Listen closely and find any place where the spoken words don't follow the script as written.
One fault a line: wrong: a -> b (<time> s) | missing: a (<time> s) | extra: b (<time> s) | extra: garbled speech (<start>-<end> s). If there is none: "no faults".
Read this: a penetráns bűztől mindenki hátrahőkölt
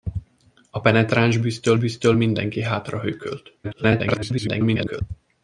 extra: bűztől (1.8 s)
extra: garbled speech (3.6-5.0 s)